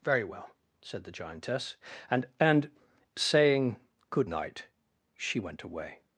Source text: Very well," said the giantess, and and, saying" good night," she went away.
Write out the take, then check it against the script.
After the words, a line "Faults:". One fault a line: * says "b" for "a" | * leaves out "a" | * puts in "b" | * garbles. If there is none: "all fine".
Very well," said the giantess, and and, saying" good night," she went away.
Faults:
all fine